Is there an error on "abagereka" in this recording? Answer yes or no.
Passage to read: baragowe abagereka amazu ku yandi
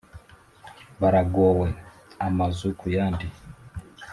yes